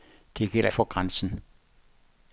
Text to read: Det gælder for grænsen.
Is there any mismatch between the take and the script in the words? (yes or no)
no